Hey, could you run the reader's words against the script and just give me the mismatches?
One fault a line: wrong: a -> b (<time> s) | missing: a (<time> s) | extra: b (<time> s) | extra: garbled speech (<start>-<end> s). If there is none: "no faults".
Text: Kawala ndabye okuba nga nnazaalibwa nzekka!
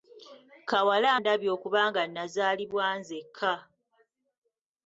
no faults